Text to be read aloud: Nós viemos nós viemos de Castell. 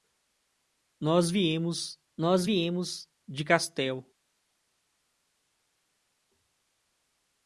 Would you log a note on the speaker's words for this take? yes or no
no